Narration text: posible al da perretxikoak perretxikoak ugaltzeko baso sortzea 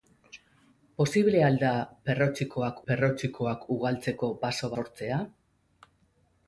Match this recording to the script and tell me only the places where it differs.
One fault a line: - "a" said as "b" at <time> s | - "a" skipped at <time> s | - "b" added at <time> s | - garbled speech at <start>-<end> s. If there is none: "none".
none